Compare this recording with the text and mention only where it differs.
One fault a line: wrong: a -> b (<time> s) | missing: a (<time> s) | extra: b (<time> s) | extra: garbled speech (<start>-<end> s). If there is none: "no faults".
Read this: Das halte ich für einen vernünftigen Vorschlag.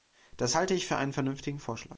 no faults